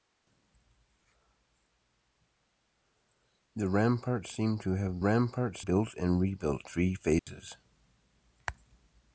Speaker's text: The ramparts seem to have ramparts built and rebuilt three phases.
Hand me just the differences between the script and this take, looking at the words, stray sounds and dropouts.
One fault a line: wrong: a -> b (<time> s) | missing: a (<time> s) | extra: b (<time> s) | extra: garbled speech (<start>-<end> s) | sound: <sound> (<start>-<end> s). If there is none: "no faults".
sound: dropout (7.2-7.3 s)